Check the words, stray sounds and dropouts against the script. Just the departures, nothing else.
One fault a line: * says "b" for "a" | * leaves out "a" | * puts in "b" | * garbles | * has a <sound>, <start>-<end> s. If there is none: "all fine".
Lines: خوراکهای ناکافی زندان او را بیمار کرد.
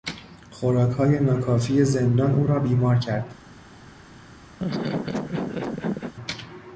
* has a laugh, 4.6-6.1 s